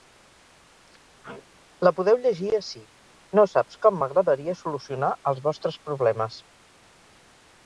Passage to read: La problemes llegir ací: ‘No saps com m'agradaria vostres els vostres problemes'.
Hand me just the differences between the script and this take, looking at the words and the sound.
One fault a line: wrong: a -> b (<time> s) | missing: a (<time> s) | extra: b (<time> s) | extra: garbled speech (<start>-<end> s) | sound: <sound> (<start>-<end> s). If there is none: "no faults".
sound: sneeze (1.2-1.6 s)
wrong: problemes -> podeu (2.0 s)
wrong: vostres -> solucionar (4.6 s)